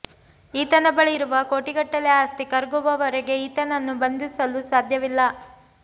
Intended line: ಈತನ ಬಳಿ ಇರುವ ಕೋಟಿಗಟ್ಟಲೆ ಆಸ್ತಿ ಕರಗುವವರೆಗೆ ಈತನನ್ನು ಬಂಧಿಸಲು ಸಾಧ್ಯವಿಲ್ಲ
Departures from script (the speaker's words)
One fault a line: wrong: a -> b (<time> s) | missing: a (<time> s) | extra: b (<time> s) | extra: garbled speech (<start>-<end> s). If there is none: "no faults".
no faults